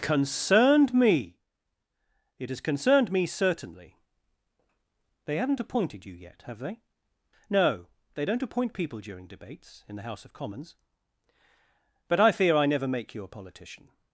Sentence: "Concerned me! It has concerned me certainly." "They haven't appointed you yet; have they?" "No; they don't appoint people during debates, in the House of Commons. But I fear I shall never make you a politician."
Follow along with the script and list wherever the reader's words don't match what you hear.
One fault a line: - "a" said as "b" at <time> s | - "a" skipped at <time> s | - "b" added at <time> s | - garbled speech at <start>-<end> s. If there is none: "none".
- "shall" skipped at 12.7 s